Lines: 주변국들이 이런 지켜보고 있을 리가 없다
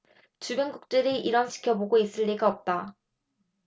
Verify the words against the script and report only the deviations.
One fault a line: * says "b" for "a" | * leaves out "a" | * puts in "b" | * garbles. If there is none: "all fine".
all fine